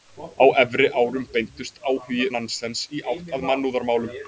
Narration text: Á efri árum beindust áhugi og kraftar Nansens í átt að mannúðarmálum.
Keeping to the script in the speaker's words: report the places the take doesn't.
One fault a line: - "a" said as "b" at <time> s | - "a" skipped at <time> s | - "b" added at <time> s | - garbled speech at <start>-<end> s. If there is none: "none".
- "og kraftar" skipped at 2.2 s